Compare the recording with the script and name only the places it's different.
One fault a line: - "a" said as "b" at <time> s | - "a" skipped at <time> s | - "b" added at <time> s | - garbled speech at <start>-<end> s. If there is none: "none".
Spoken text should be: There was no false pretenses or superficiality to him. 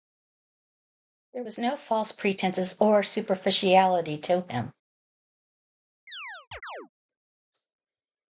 none